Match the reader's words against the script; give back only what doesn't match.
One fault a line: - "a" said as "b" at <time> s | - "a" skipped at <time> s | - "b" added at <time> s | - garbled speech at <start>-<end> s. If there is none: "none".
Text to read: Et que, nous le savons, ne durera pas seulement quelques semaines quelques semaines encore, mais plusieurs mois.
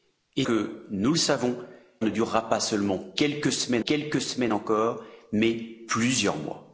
none